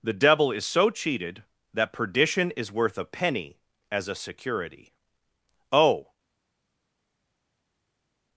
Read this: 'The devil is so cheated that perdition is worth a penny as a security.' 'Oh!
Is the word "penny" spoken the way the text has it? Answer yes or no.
yes